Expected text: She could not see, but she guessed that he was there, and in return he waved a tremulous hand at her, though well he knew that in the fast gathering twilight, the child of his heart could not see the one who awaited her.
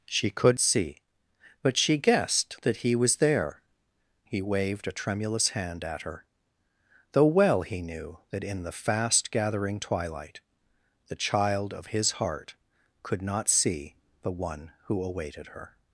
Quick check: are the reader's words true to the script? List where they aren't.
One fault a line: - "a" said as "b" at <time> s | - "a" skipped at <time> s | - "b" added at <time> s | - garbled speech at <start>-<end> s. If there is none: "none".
- "not" skipped at 0.6 s
- "and in return" skipped at 3.6 s